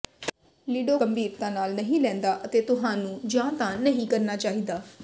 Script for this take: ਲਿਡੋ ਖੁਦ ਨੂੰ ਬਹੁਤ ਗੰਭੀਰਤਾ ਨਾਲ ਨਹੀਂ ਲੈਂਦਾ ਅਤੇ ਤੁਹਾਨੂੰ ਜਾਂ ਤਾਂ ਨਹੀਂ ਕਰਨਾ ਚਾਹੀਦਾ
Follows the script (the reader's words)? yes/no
no